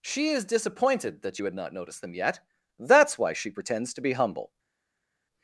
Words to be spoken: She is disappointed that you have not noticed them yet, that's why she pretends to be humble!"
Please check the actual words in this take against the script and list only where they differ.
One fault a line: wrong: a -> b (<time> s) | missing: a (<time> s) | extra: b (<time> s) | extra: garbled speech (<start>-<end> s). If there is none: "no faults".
wrong: have -> had (1.4 s)